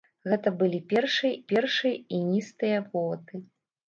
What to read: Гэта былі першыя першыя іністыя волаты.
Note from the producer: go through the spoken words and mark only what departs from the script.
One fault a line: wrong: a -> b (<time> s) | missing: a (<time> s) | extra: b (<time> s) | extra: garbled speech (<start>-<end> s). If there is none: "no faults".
no faults